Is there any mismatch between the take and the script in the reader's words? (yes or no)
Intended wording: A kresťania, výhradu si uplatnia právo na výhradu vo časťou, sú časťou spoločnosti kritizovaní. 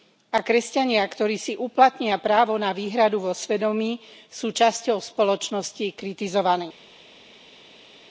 yes